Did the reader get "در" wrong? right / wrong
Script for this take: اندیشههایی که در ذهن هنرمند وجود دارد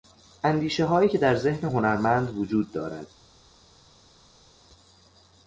right